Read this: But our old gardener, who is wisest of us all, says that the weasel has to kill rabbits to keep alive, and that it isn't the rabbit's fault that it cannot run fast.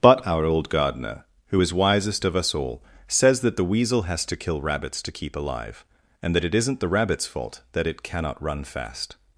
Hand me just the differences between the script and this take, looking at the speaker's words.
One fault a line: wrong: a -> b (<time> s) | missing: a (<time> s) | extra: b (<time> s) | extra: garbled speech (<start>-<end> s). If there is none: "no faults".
no faults